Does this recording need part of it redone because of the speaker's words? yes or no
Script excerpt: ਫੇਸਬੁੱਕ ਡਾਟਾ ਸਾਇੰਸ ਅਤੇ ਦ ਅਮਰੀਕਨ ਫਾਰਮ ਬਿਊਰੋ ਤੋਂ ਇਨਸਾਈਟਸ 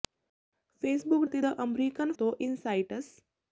yes